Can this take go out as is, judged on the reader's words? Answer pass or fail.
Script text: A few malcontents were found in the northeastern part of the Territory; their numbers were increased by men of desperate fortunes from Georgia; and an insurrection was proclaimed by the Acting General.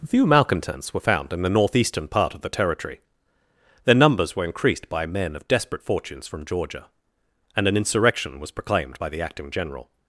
fail